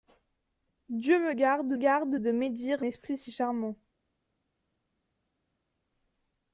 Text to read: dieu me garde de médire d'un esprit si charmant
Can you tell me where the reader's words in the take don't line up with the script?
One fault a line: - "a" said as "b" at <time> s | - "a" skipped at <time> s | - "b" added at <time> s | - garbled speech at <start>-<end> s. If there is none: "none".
- "garde" added at 1.8 s
- "d'un" skipped at 2.9 s